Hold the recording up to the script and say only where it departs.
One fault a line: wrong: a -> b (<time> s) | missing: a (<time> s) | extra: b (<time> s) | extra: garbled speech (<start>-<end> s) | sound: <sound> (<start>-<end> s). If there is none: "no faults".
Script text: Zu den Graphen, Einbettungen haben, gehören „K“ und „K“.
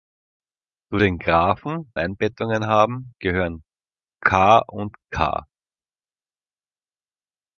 no faults